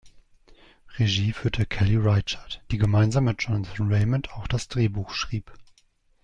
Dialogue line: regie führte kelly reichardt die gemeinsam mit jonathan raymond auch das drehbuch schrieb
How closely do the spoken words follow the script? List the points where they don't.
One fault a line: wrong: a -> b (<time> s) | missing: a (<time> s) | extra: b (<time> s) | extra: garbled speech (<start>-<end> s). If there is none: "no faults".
no faults